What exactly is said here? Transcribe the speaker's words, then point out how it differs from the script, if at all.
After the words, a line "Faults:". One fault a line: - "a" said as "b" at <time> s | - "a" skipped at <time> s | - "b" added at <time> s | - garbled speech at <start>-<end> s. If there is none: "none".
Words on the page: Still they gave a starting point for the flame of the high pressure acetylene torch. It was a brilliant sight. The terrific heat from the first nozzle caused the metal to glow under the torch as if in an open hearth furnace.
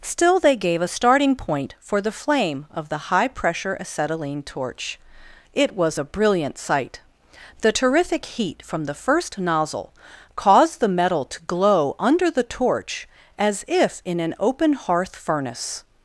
Still they gave a starting point for the flame of the high pressure acetylene torch. It was a brilliant sight. The terrific heat from the first nozzle caused the metal to glow under the torch as if in an open hearth furnace.
Faults:
none